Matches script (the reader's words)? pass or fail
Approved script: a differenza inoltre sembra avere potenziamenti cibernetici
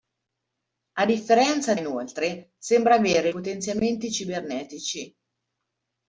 pass